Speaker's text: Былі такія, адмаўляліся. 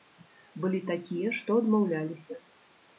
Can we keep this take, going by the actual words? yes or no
no